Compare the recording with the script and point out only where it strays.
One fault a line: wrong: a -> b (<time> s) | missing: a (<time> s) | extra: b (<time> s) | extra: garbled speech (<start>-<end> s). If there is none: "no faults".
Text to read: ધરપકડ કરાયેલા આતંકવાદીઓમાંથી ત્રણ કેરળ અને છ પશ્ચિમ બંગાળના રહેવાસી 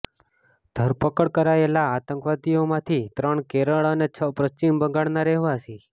no faults